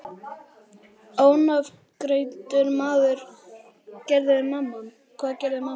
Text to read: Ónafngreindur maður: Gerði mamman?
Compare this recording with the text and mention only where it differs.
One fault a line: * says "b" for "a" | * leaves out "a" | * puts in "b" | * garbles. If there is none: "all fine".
all fine